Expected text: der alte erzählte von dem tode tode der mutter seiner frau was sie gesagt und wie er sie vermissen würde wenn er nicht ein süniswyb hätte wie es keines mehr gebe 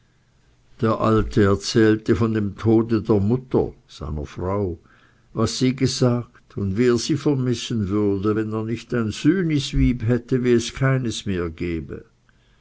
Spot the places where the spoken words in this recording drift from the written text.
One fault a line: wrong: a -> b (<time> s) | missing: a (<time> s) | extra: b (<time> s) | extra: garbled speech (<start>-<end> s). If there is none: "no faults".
missing: tode (3.0 s)